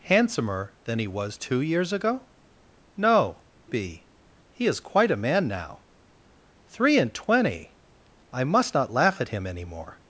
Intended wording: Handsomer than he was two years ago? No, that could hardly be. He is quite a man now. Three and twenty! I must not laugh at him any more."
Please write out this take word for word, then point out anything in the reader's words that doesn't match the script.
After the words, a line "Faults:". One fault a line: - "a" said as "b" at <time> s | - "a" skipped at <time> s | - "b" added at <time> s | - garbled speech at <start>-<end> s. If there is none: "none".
Handsomer than he was two years ago? No, be. He is quite a man now. Three and twenty! I must not laugh at him any more."
Faults:
- "that could hardly" skipped at 3.4 s